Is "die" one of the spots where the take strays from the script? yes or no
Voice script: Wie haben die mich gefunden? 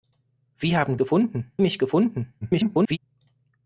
yes